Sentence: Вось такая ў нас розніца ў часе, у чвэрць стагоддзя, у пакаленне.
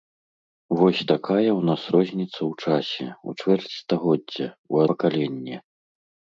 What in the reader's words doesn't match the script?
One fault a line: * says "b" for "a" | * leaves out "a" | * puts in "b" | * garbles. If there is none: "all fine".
all fine